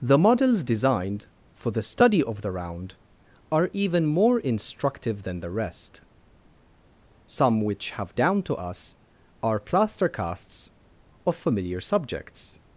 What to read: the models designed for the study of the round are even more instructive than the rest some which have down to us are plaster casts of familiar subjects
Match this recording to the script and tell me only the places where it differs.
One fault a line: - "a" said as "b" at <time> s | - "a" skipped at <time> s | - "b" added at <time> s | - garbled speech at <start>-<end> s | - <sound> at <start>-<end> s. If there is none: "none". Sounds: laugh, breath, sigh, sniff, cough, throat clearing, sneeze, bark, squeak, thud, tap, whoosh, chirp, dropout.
none